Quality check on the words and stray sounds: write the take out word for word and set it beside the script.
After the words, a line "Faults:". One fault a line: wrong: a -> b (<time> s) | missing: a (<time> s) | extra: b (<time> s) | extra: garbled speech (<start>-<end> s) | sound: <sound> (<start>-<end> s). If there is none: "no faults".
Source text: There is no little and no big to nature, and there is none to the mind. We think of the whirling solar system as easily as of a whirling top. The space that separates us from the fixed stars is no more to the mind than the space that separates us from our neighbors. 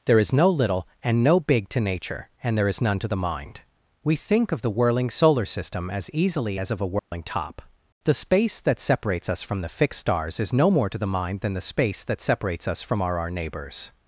There is no little and no big to nature, and there is none to the mind. We think of the whirling solar system as easily as of a whirling top. The space that separates us from the fixed stars is no more to the mind than the space that separates us from our our neighbors.
Faults:
sound: dropout (7.0-7.1 s)
extra: our (13.2 s)